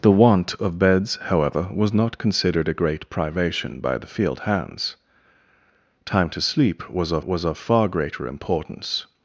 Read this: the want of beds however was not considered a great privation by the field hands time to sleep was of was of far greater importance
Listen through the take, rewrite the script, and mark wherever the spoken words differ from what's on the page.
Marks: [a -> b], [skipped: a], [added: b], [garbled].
the want of beds however was not considered a great privation by the field hands time to sleep was of was of far greater importance